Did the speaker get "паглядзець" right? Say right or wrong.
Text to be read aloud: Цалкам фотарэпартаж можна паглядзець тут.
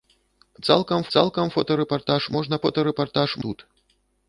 wrong